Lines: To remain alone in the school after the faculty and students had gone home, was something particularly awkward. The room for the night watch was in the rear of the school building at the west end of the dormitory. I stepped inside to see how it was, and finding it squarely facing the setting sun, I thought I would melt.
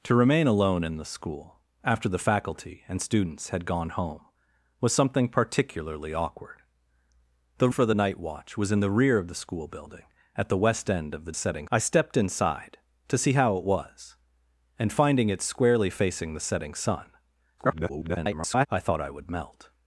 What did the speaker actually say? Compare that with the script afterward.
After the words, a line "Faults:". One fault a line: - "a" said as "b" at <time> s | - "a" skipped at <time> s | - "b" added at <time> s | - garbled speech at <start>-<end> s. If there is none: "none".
To remain alone in the school after the faculty and students had gone home, was something particularly awkward. The for the night watch was in the rear of the school building at the west end of the setting. I stepped inside to see how it was, and finding it squarely facing the setting sun, [garbled] I thought I would melt.
Faults:
- "room" skipped at 7.7 s
- "dormitory" said as "setting" at 11.3 s
- garbled speech at 17.6-18.7 s